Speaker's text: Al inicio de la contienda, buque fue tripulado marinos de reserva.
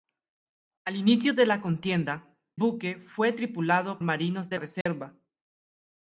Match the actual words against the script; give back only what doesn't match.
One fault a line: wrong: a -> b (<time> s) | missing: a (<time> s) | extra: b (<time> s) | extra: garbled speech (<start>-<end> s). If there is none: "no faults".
no faults